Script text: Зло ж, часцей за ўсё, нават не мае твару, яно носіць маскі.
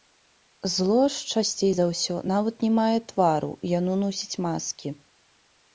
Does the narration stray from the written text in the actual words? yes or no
no